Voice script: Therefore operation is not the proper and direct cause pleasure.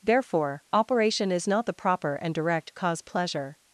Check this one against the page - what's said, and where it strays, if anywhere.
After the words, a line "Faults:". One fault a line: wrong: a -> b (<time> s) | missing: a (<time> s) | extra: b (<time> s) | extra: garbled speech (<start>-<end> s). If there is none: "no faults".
Therefore operation is not the proper and direct cause pleasure.
Faults:
no faults